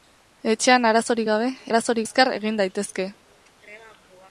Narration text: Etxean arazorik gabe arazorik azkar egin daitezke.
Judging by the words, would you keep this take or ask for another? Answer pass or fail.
pass